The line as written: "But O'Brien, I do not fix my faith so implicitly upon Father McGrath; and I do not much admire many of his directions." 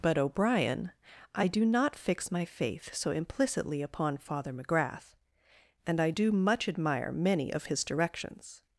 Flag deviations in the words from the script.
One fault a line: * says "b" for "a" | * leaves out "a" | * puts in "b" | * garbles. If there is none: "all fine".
* leaves out "not"